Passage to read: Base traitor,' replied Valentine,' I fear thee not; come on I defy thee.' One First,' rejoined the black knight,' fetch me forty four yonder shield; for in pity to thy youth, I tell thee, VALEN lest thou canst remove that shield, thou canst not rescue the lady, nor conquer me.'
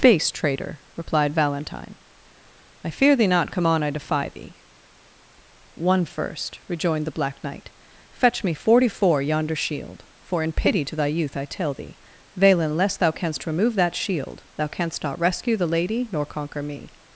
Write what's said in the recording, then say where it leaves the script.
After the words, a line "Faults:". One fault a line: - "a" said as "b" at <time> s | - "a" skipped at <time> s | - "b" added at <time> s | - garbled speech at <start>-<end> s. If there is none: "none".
Base traitor,' replied Valentine,' I fear thee not; come on I defy thee.' One First,' rejoined the black knight,' fetch me forty four yonder shield; for in pity to thy youth, I tell thee, VALEN lest thou canst remove that shield, thou canst not rescue the lady, nor conquer me.'
Faults:
none